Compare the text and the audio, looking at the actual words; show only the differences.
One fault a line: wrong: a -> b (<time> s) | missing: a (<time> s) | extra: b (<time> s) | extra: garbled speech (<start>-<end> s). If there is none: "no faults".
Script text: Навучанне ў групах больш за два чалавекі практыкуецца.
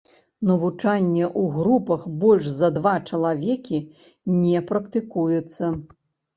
extra: не (4.5 s)